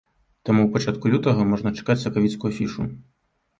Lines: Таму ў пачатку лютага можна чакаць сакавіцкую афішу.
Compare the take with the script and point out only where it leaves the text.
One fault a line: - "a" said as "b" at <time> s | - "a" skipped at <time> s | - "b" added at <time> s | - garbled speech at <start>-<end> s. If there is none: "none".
none